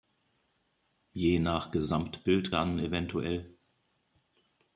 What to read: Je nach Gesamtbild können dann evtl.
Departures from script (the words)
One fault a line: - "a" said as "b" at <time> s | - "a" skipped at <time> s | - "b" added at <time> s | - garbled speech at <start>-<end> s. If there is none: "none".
- "können" skipped at 2.5 s